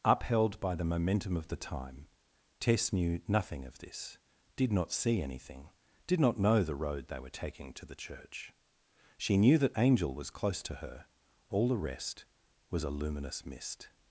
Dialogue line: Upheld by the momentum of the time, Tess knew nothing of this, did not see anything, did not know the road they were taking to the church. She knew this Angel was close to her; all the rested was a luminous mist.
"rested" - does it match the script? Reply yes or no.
no